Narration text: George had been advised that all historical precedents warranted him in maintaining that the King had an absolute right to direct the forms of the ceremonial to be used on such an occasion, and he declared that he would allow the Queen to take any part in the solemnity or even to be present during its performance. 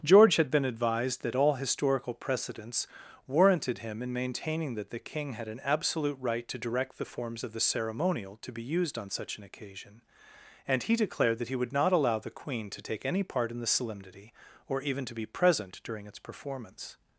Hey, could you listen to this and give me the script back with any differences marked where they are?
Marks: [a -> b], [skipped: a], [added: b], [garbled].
George had been advised that all historical precedents warranted him in maintaining that the King had an absolute right to direct the forms of the ceremonial to be used on such an occasion, and he declared that he would [added: not] allow the Queen to take any part in the solemnity or even to be present during its performance.